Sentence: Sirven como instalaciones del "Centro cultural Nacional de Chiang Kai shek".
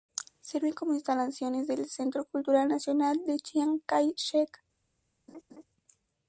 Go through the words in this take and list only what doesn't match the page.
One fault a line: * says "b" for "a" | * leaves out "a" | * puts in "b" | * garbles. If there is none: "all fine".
all fine